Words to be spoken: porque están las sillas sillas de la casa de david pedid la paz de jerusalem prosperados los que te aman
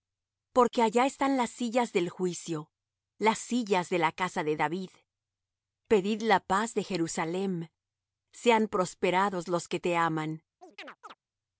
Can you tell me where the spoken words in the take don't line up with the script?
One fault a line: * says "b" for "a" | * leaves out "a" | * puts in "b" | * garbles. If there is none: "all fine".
* puts in "allá"
* puts in "del juicio las"
* puts in "sean"